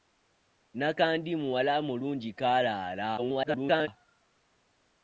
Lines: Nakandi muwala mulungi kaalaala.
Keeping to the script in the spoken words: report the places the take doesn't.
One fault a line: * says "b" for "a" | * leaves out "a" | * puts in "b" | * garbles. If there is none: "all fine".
* garbles